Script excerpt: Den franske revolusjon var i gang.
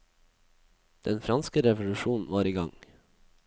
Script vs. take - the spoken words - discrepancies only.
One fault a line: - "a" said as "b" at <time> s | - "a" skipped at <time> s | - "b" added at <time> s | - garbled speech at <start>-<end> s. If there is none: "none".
none